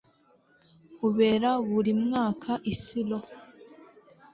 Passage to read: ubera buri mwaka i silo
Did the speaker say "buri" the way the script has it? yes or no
yes